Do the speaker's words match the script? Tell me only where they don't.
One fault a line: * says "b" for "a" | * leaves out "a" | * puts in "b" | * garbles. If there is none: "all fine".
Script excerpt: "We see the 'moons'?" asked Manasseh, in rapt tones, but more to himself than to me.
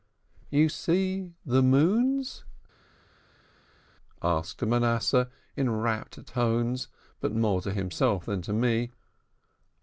* says "You" for "We"